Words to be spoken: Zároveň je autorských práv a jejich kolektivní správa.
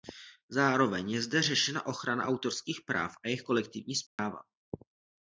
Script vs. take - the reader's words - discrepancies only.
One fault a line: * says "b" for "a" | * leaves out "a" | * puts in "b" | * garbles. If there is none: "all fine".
* puts in "zde řešena ochrana"